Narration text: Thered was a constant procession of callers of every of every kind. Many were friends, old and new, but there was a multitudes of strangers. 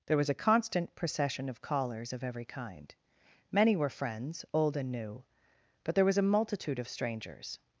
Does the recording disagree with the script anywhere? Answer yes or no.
yes